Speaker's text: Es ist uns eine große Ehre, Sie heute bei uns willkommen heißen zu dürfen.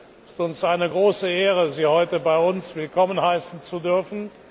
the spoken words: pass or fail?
pass